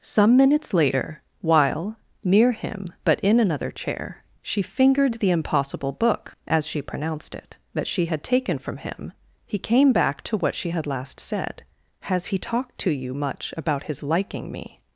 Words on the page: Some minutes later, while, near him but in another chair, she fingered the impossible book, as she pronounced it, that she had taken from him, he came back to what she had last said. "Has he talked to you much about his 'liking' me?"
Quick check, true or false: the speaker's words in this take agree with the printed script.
true